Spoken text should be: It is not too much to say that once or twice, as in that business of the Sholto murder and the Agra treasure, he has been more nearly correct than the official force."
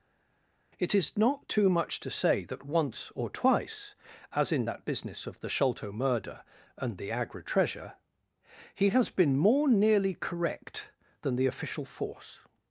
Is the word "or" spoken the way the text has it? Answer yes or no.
yes